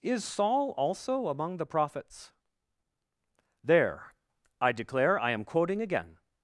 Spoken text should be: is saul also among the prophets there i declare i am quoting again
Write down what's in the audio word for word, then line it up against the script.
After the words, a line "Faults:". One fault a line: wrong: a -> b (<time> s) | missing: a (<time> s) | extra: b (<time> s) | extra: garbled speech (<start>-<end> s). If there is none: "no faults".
is saul also among the prophets there i declare i am quoting again
Faults:
no faults